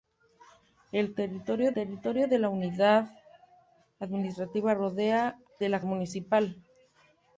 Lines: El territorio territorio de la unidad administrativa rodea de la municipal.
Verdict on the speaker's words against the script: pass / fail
pass